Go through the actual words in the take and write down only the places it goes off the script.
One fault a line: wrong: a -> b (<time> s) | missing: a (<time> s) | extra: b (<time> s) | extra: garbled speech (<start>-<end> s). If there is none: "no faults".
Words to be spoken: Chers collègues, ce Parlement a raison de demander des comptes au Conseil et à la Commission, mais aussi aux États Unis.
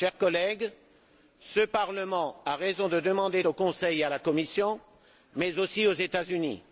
missing: des comptes (3.4 s)